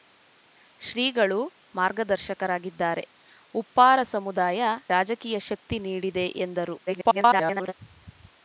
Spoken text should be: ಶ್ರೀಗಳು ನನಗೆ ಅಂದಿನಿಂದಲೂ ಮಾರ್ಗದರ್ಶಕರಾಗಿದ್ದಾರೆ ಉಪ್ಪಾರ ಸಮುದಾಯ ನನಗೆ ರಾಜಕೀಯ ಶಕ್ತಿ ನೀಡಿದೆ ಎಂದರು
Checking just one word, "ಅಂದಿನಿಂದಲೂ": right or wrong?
wrong